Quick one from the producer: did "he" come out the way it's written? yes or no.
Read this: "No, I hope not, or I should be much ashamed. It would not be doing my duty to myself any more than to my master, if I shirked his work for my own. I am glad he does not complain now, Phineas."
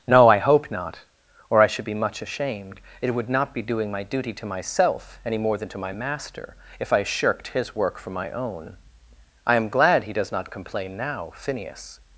yes